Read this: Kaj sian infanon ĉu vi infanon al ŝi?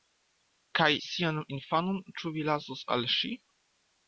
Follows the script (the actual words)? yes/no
no